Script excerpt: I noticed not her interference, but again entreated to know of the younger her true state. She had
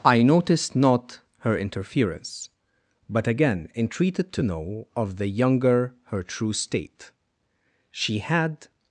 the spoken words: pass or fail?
pass